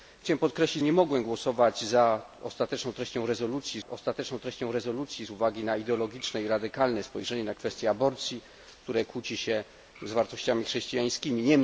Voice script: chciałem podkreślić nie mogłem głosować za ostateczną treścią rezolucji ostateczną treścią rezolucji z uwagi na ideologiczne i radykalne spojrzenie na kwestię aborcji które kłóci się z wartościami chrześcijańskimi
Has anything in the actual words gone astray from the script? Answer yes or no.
no